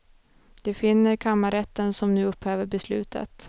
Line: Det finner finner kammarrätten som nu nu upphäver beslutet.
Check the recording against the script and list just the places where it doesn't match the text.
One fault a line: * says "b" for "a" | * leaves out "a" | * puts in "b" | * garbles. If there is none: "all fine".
* leaves out "finner"
* leaves out "nu"